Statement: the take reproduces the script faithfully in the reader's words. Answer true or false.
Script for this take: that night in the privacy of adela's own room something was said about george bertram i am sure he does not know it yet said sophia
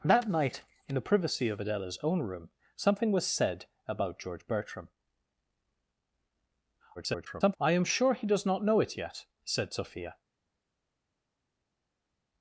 false